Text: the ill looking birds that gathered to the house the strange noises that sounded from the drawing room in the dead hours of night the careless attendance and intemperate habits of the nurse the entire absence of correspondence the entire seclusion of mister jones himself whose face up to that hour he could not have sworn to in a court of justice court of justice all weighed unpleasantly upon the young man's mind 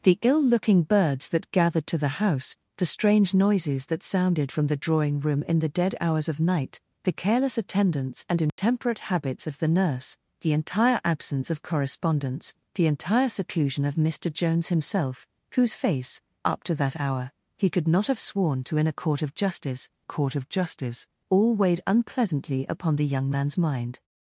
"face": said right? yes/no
yes